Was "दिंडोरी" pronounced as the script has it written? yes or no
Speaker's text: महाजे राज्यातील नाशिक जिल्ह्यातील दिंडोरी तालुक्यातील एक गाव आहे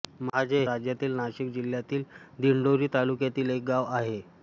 yes